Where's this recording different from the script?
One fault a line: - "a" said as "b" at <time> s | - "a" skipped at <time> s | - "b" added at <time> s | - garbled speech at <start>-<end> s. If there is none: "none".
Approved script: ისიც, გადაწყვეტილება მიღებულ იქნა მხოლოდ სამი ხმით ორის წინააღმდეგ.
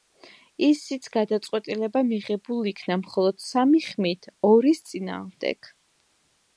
none